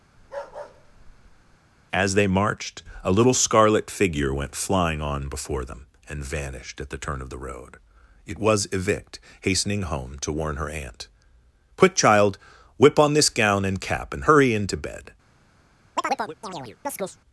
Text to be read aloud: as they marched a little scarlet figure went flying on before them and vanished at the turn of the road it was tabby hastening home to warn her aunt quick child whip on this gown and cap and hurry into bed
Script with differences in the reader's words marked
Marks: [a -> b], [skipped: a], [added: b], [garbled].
as they marched a little scarlet figure went flying on before them and vanished at the turn of the road it was [tabby -> evict] hastening home to warn her aunt quick child whip on this gown and cap and hurry into bed